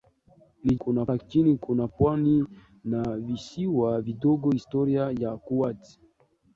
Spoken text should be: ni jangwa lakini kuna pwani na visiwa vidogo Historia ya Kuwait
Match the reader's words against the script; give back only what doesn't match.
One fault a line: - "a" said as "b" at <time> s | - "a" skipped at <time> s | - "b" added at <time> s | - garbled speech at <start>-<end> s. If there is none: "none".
- "jangwa" said as "kuna" at 0.8 s